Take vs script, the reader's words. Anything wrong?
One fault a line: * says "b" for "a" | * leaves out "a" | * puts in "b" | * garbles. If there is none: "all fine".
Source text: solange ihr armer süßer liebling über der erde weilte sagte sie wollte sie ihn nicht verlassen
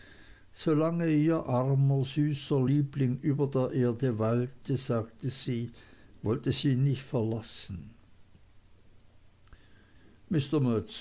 all fine